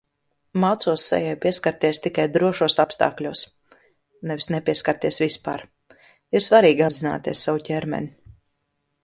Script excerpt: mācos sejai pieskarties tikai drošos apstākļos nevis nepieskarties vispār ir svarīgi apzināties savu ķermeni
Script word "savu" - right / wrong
right